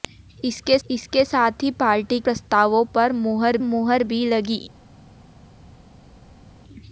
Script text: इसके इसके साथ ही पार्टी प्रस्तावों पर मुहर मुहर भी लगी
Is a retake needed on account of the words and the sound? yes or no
no